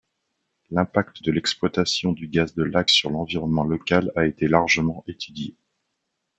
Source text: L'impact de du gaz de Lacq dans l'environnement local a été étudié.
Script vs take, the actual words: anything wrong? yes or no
yes